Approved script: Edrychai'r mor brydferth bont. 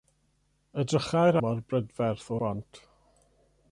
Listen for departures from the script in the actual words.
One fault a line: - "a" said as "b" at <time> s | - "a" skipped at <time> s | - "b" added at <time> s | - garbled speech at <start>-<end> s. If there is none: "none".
none